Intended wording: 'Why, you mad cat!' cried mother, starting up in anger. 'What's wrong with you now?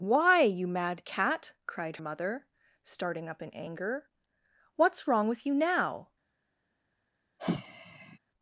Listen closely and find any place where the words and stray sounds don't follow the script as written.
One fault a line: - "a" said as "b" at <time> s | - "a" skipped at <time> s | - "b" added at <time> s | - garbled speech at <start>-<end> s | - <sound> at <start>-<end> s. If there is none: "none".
- sigh at 7.4-8.2 s